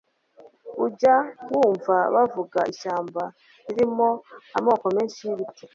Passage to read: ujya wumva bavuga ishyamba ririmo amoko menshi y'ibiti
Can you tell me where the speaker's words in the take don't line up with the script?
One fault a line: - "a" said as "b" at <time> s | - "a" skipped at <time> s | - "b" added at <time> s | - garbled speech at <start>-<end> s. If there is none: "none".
none